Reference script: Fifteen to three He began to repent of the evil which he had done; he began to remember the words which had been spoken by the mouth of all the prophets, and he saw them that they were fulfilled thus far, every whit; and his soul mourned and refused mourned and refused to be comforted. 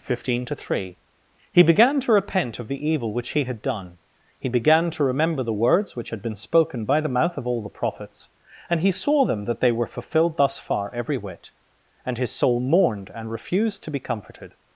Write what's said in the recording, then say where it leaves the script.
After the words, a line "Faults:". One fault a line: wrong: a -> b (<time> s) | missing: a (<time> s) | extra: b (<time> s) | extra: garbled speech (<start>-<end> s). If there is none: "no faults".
Fifteen to three He began to repent of the evil which he had done; he began to remember the words which had been spoken by the mouth of all the prophets, and he saw them that they were fulfilled thus far, every whit; and his soul mourned and refused to be comforted.
Faults:
missing: mourned and refused (13.8 s)